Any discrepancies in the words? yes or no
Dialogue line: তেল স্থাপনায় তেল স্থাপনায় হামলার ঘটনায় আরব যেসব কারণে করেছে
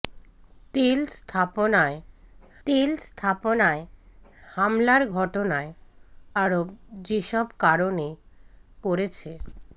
no